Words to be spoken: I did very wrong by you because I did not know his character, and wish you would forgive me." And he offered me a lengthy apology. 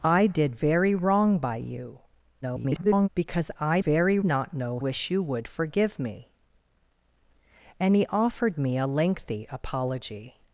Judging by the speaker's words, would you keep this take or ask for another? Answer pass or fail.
fail